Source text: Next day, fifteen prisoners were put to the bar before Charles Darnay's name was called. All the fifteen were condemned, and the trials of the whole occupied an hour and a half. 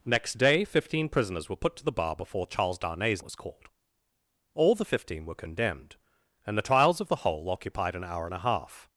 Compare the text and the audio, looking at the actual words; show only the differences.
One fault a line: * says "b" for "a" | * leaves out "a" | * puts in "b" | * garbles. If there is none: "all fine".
* leaves out "name"